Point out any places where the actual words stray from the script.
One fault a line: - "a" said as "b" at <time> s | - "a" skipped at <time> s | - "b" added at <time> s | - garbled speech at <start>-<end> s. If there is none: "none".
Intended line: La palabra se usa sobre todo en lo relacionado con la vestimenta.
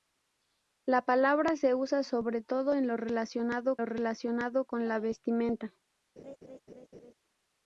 - "lo relacionado" added at 3.8 s